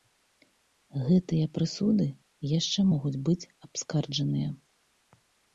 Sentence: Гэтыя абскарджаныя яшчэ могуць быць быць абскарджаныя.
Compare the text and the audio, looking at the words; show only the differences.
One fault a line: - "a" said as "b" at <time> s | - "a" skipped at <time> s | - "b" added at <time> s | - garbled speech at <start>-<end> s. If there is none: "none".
- "абскарджаныя" said as "прысуды" at 1.6 s
- "быць" skipped at 3.5 s